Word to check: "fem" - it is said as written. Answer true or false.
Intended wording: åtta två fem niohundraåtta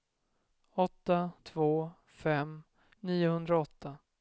true